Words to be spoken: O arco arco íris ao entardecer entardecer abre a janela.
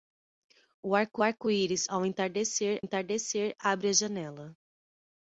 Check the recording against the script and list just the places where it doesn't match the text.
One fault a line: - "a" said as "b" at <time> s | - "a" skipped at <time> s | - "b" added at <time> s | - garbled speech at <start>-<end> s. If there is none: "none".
none